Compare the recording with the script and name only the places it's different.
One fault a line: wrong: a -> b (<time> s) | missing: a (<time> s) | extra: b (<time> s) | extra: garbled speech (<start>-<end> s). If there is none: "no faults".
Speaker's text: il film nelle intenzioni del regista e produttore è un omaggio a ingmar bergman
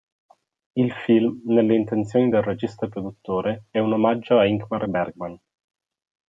no faults